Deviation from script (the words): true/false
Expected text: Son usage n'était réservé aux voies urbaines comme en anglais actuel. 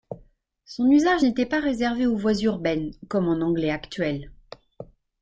true